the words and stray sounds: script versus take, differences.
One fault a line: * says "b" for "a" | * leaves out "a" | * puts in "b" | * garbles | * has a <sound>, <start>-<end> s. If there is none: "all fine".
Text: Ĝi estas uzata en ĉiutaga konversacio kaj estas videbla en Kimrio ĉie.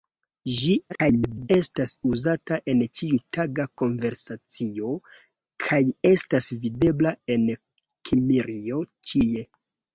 * garbles